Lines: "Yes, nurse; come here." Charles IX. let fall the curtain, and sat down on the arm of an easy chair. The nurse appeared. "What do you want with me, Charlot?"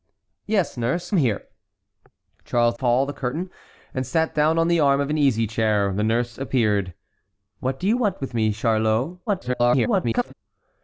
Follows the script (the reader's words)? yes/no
no